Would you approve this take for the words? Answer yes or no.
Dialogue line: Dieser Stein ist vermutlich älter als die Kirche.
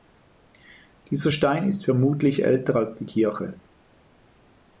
yes